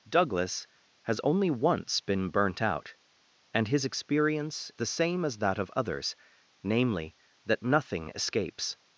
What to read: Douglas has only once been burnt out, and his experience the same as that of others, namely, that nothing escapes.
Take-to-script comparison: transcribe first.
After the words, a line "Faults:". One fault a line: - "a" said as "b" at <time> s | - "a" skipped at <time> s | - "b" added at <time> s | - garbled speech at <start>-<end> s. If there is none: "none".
Douglas has only once been burnt out, and his experience the same as that of others, namely, that nothing escapes.
Faults:
none